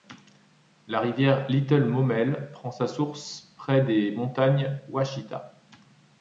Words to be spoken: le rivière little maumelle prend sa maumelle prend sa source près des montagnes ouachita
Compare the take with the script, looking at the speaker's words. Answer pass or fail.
fail